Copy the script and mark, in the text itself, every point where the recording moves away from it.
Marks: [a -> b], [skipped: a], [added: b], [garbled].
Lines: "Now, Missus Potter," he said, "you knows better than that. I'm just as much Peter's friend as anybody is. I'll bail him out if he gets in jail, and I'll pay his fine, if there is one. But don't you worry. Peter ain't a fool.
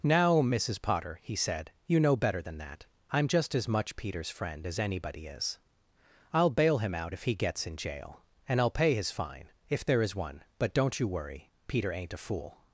"Now, Missus Potter," he said, "you [knows -> know] better than that. I'm just as much Peter's friend as anybody is. I'll bail him out if he gets in jail, and I'll pay his fine, if there is one. But don't you worry. Peter ain't a fool.